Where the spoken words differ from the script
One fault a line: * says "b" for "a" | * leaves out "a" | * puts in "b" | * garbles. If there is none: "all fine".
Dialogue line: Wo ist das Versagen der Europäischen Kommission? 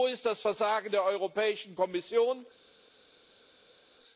all fine